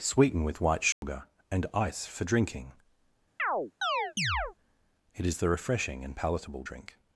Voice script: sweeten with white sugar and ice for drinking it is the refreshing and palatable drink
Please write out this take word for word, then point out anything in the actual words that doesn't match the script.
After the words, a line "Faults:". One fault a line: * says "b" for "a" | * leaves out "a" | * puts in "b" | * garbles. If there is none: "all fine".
sweeten with white sugar and ice for drinking it is the refreshing and palatable drink
Faults:
all fine